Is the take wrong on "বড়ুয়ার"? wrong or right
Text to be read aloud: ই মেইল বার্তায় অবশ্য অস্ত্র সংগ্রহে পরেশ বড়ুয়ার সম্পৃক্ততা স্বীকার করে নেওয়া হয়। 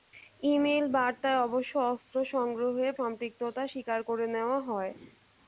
wrong